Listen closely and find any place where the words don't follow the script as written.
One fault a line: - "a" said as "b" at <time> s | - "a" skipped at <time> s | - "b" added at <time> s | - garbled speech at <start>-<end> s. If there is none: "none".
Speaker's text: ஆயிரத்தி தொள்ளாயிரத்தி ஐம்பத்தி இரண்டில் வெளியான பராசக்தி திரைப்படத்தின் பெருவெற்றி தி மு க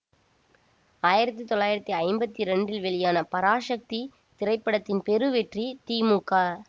none